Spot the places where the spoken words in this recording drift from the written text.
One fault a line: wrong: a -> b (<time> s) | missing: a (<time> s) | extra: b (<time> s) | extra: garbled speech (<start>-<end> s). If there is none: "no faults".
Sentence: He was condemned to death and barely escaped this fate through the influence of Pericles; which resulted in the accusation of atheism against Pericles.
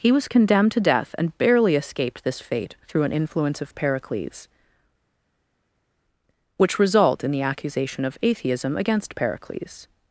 wrong: the -> an (3.0 s)
wrong: resulted -> result (6.8 s)